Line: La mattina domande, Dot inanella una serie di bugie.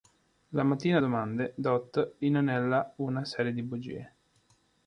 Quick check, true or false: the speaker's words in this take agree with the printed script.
true